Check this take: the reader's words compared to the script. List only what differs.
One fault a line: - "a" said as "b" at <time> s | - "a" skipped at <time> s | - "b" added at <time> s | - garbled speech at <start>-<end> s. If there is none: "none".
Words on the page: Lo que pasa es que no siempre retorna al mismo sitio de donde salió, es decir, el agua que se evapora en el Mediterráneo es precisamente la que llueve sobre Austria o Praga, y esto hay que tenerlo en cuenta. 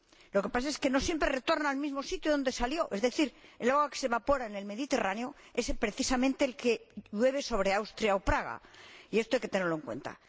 none